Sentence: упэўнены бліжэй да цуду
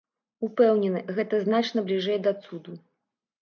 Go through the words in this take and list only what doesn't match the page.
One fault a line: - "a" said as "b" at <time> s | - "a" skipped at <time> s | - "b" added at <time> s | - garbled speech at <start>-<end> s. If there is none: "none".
- "гэта значна" added at 1.2 s